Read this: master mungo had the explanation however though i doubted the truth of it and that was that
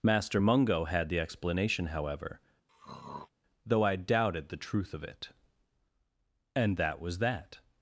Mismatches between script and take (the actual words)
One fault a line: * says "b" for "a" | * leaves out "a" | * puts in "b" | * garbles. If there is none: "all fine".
all fine